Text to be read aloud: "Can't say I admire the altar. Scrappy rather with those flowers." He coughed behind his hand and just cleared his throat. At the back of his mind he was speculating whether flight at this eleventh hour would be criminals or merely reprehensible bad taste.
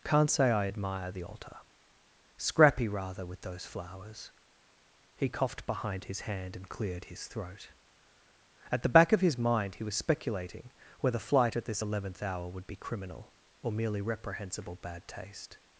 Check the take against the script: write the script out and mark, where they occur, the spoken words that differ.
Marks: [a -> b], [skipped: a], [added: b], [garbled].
"Can't say I admire the altar. Scrappy rather with those flowers." He coughed behind his hand and [skipped: just] cleared his throat. At the back of his mind he was speculating whether flight at this eleventh hour would be [criminals -> criminal] or merely reprehensible bad taste.